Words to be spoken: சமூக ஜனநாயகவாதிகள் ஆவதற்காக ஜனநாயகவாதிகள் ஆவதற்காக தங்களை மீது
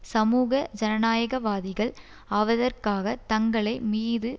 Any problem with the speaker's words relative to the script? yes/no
yes